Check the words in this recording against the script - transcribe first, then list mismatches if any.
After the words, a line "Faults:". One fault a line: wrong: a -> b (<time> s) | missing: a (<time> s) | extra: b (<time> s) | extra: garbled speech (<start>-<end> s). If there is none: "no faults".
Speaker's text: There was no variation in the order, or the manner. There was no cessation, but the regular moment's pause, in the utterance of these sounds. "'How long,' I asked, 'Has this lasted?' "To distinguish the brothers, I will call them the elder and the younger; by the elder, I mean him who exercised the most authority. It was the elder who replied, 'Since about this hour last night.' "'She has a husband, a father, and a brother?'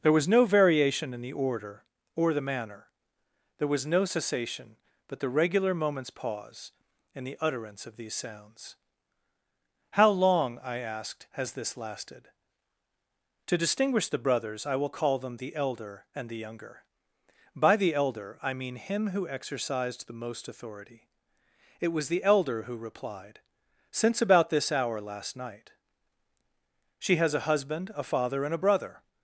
There was no variation in the order, or the manner. There was no cessation, but the regular moment's pause, in the utterance of these sounds. "'How long,' I asked, 'Has this lasted?' "To distinguish the brothers, I will call them the elder and the younger; by the elder, I mean him who exercised the most authority. It was the elder who replied, 'Since about this hour last night.' "'She has a husband, a father, and a brother?'
Faults:
no faults